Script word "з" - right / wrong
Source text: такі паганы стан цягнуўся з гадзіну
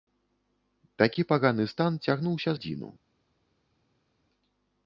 wrong